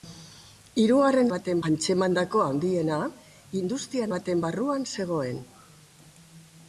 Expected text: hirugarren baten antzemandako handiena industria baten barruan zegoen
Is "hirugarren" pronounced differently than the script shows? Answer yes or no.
no